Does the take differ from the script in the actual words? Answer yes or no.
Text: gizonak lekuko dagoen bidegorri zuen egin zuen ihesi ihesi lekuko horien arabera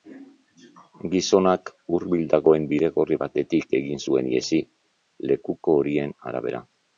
yes